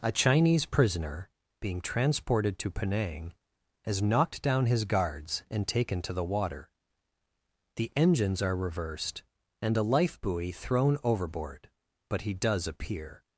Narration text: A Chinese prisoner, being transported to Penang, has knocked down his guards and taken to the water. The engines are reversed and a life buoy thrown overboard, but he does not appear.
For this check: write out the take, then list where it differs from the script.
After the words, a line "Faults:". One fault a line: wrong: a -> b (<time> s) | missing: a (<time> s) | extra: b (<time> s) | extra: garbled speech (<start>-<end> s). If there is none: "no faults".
A Chinese prisoner, being transported to Penang, has knocked down his guards and taken to the water. The engines are reversed and a life buoy thrown overboard, but he does appear.
Faults:
missing: not (12.6 s)